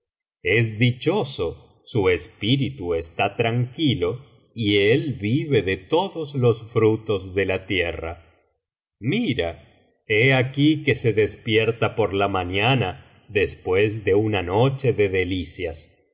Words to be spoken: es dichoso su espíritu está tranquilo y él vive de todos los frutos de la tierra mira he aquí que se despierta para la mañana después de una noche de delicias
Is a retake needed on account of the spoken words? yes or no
yes